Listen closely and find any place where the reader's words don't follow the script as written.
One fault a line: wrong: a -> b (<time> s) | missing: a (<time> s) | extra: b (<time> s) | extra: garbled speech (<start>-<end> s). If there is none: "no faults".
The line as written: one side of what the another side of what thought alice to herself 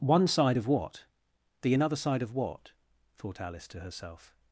no faults